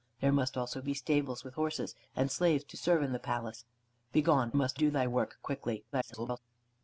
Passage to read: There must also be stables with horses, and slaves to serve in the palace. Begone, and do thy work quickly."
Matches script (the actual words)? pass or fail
fail